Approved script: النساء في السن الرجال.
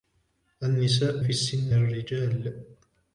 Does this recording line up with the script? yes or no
yes